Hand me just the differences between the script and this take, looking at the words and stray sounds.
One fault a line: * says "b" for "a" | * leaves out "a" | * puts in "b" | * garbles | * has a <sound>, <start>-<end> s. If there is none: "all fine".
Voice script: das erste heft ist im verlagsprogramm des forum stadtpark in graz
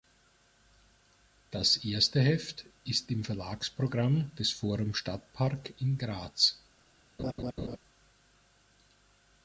* has a laugh, 7.2-7.8 s